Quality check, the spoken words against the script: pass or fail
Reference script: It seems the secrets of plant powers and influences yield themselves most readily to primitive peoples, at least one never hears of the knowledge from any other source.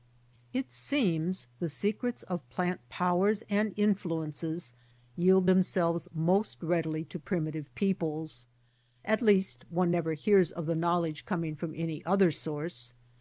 fail